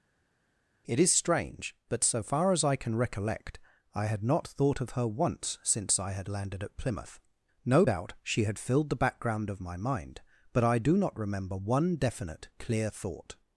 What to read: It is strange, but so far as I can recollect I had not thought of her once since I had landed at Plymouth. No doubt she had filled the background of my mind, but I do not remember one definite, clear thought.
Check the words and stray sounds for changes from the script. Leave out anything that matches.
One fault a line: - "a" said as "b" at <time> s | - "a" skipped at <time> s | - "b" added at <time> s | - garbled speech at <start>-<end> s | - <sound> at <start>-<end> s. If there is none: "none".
none